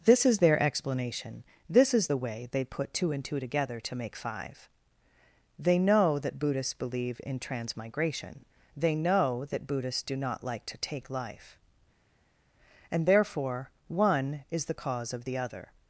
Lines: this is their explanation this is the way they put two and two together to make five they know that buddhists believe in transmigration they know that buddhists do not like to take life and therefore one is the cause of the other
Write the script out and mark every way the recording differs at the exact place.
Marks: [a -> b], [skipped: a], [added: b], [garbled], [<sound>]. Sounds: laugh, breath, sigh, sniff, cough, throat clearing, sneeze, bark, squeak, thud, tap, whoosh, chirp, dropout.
this is their explanation this is the way they put two and two together to make five they know that buddhists believe in transmigration they know that buddhists do not like to take life and therefore one is the cause of the other